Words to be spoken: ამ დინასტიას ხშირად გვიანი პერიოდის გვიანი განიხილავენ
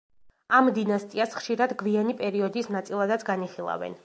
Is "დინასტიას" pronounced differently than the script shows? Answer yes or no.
no